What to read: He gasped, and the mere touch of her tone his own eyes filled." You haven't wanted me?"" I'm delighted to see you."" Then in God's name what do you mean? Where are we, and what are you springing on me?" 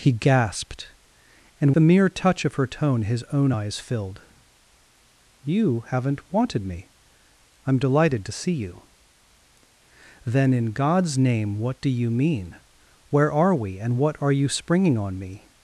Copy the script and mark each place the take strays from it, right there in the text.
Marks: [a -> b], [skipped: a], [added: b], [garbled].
He gasped, and the mere touch of her tone his own eyes filled." You haven't wanted me?"" I'm delighted to see you."" Then in God's name what do you mean? Where are we, and what are you springing on me?"